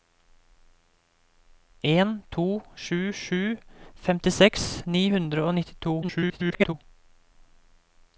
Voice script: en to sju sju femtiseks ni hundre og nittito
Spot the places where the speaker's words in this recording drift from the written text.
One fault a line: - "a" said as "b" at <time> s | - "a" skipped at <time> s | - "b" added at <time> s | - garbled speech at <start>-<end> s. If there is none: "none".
- garbled speech at 6.0-6.7 s